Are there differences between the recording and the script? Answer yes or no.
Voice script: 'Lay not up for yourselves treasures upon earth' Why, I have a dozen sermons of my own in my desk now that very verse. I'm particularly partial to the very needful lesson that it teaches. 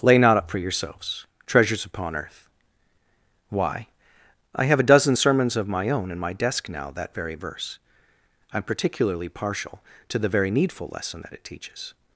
no